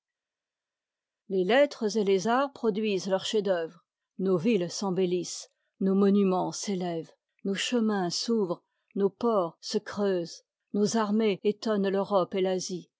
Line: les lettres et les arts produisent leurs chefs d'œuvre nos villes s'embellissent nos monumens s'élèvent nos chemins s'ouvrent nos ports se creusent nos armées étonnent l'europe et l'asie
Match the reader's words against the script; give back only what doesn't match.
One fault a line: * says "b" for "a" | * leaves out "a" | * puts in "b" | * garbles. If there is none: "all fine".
all fine